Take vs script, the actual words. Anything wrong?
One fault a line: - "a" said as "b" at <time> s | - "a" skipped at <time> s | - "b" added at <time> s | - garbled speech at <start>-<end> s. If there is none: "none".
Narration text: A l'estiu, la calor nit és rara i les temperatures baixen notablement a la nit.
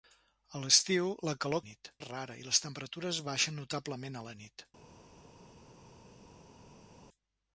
none